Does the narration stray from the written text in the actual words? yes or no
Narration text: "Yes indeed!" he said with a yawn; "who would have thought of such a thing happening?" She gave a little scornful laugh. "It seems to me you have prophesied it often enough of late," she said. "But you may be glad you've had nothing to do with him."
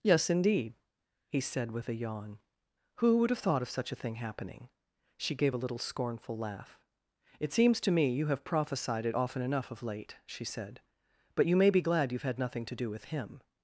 no